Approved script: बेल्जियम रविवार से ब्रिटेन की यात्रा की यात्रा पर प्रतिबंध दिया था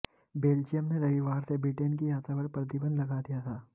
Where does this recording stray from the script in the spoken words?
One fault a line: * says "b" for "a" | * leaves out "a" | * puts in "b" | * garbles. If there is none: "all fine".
* puts in "ने"
* leaves out "की यात्रा"
* puts in "लगा"